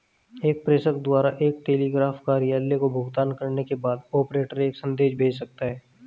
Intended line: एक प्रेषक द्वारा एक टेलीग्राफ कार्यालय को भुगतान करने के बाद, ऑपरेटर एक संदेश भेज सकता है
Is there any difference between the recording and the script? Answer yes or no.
no